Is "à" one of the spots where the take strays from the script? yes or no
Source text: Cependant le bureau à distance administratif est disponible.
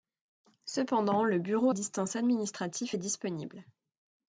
yes